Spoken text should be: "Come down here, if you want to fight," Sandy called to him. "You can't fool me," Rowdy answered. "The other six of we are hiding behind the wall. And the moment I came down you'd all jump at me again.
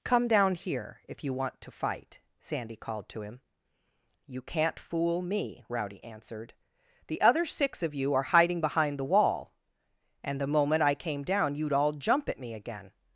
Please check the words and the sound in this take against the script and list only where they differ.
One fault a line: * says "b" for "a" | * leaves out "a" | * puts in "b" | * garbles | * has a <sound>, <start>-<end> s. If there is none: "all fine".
* says "you" for "we"